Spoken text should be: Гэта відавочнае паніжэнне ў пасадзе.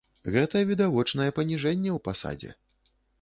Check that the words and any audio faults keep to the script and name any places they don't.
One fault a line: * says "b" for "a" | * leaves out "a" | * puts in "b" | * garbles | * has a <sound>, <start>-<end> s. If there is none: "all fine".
all fine